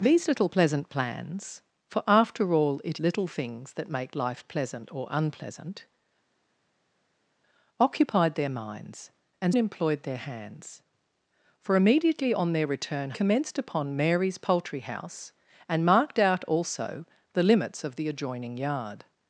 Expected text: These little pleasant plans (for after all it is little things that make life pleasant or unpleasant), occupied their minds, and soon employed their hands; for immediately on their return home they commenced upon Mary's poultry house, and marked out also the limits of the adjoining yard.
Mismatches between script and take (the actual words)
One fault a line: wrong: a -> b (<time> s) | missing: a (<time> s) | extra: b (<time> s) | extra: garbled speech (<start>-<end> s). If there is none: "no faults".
missing: is (3.0 s)
missing: soon (9.5 s)
missing: home they (13.1 s)